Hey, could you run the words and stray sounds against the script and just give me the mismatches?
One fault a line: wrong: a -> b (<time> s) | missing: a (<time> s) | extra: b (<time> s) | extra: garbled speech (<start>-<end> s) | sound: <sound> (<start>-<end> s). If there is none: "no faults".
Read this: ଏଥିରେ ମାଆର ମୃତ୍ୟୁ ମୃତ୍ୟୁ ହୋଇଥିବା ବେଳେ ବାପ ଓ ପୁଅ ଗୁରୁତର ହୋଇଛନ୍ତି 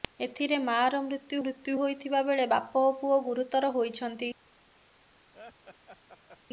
sound: laugh (5.3-6.4 s)